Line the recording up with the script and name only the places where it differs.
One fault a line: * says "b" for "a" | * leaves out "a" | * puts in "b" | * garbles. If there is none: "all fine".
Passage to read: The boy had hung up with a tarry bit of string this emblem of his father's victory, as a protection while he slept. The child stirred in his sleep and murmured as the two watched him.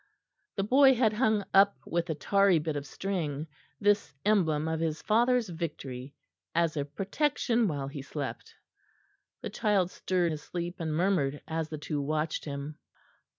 * leaves out "in"